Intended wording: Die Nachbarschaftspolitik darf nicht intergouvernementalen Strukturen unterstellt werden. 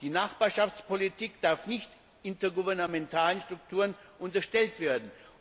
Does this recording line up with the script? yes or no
yes